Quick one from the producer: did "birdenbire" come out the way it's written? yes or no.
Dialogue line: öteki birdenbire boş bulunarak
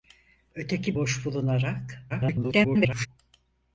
no